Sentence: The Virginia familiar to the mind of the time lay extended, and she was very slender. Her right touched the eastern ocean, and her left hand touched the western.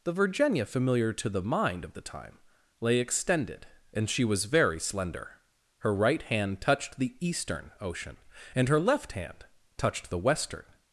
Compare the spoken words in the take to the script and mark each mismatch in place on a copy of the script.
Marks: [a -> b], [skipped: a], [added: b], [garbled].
The Virginia familiar to the mind of the time lay extended, and she was very slender. Her right [added: hand] touched the eastern ocean, and her left hand touched the western.